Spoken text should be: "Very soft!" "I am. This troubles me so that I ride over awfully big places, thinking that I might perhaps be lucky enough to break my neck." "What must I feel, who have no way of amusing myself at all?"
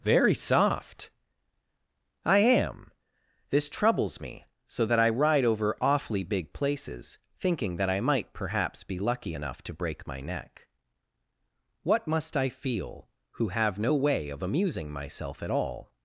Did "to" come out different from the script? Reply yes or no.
no